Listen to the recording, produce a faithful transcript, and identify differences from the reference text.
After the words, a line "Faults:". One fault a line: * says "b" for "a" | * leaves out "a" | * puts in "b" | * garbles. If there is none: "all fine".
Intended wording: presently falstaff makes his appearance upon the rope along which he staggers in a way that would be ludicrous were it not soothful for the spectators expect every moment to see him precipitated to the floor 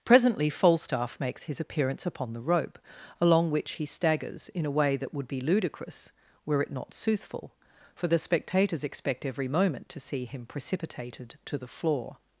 presently falstaff makes his appearance upon the rope along which he staggers in a way that would be ludicrous were it not soothful for the spectators expect every moment to see him precipitated to the floor
Faults:
all fine